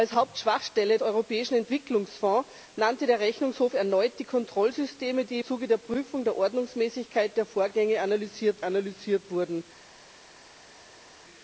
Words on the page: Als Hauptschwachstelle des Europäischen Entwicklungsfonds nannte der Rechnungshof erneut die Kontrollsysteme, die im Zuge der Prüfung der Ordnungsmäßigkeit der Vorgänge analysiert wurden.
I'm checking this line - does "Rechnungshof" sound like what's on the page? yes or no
yes